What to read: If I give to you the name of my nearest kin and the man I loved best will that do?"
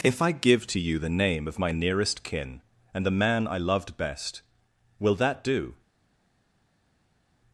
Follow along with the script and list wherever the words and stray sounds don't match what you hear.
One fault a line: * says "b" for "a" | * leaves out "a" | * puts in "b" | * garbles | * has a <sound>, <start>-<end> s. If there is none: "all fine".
all fine